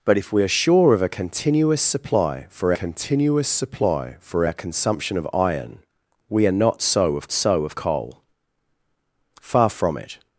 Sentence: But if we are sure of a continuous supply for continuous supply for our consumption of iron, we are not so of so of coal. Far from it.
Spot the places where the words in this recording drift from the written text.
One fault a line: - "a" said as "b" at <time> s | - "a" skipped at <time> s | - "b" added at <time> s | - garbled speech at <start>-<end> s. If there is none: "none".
none